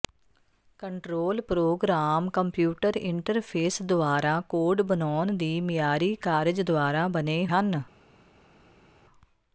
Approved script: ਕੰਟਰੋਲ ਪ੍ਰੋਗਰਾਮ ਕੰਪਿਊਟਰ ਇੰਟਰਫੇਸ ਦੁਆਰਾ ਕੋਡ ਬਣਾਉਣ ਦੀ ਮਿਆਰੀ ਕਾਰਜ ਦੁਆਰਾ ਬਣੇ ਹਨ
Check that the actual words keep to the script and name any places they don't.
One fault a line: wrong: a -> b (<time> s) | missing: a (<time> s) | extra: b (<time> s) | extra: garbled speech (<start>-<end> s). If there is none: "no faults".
no faults